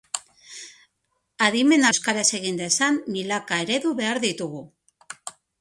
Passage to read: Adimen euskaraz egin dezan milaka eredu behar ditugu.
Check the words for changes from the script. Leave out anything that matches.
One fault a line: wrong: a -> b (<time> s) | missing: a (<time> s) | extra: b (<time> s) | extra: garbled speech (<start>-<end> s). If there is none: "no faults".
no faults